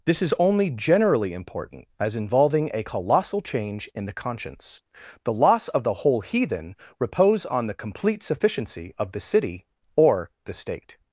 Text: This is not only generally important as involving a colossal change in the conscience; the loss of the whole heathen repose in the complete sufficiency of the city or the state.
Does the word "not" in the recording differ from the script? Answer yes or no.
yes